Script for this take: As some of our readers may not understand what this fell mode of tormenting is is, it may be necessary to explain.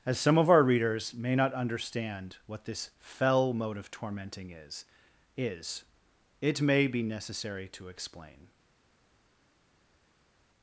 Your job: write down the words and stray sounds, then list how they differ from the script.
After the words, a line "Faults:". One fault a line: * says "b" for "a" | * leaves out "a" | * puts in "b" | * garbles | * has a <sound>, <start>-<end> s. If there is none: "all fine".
As some of our readers may not understand what this fell mode of tormenting is is, it may be necessary to explain.
Faults:
all fine